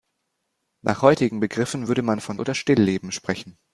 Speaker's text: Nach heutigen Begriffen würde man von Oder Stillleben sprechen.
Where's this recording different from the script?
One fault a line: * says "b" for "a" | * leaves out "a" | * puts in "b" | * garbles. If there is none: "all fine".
all fine